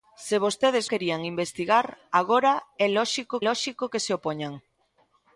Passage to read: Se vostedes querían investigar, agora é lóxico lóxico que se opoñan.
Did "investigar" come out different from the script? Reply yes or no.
no